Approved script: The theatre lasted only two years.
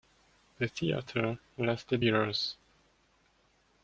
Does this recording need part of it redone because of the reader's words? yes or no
yes